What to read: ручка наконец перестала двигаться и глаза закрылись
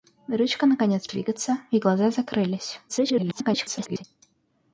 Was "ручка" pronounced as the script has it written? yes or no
yes